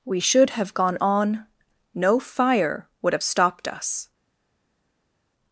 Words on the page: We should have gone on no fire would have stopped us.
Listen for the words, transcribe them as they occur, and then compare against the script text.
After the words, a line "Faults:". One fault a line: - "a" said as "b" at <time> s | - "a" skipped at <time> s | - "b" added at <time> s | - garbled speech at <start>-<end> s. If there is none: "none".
We should have gone on no fire would have stopped us.
Faults:
none